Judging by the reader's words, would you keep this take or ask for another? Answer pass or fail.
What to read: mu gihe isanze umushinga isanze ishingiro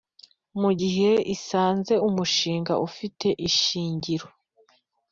fail